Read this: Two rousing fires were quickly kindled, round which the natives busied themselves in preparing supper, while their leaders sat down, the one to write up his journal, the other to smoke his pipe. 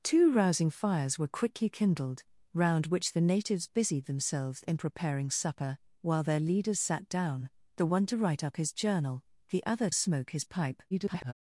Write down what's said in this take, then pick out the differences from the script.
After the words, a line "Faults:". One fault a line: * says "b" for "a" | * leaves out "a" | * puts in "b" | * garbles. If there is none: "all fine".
Two rousing fires were quickly kindled, round which the natives busied themselves in preparing supper, while their leaders sat down, the one to write up his journal, the other smoke his pipe. [garbled]
Faults:
* leaves out "to"
* garbles